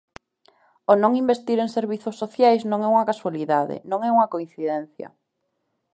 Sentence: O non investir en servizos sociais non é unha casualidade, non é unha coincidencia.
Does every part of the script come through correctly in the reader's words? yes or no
yes